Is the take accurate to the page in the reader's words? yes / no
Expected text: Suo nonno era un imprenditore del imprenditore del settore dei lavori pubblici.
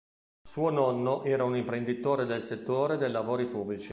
no